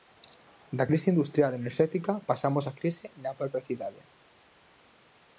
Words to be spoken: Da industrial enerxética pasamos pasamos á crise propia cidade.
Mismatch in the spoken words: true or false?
true